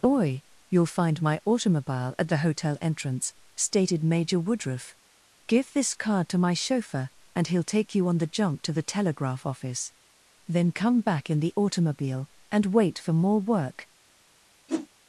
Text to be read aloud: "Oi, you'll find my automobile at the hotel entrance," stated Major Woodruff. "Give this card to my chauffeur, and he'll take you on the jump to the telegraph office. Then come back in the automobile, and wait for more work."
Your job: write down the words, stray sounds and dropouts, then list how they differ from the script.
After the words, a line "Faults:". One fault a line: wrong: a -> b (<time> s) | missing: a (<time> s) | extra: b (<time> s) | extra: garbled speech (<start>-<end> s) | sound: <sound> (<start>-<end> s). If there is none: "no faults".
"Oi, you'll find my automobile at the hotel entrance," stated Major Woodruff. "Give this card to my chauffeur, and he'll take you on the jump to the telegraph office. Then come back in the automobile, and wait for more work."
Faults:
sound: whoosh (14.7-14.9 s)